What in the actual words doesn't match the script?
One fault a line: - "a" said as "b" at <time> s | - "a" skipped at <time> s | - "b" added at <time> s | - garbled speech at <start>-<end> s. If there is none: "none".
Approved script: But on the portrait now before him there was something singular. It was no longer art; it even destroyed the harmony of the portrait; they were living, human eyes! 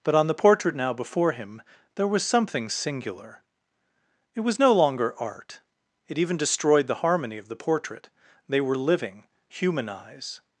none